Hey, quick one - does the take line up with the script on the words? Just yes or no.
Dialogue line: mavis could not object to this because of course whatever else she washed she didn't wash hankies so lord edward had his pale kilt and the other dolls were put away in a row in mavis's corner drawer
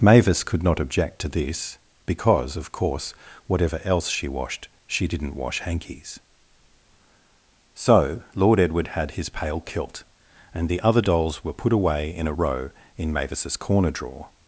yes